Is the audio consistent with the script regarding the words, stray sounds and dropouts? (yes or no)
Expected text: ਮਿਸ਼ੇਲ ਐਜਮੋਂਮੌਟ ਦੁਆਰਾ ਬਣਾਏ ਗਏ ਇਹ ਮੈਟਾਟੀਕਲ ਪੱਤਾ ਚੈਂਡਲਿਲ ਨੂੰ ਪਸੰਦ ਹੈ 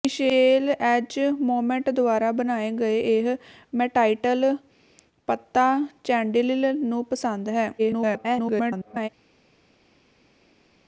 no